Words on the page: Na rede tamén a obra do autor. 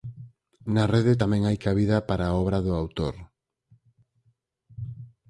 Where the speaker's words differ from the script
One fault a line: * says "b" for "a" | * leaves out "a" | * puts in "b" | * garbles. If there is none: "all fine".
* puts in "hai cabida para"